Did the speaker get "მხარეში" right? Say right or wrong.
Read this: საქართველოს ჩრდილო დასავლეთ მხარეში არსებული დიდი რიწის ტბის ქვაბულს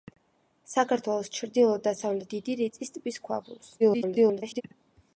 wrong